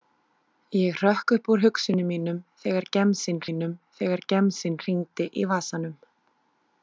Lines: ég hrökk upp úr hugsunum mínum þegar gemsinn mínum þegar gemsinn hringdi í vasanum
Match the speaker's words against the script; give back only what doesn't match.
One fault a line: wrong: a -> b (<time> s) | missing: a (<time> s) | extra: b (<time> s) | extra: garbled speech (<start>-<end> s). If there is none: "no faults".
no faults